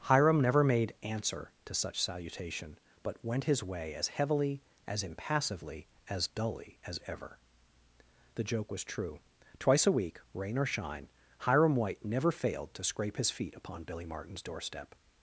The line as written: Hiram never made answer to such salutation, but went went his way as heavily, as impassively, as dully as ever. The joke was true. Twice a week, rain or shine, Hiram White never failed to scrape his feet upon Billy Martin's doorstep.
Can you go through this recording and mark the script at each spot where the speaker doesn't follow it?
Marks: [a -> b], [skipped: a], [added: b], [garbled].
Hiram never made answer to such salutation, but went [skipped: went] his way as heavily, as impassively, as dully as ever. The joke was true. Twice a week, rain or shine, Hiram White never failed to scrape his feet upon Billy Martin's doorstep.